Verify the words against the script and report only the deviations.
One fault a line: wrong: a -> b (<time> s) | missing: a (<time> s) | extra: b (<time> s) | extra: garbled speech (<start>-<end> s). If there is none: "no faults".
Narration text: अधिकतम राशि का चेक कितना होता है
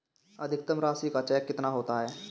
no faults